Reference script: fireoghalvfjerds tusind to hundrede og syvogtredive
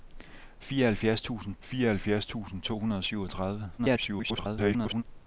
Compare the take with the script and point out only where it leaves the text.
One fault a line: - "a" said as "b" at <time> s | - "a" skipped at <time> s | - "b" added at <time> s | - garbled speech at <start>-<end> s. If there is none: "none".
- "fireoghalvfjerds tusind" added at 1.6 s
- garbled speech at 3.8-5.0 s